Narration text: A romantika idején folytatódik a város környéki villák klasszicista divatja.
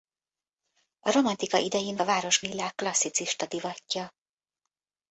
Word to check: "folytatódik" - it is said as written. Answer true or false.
false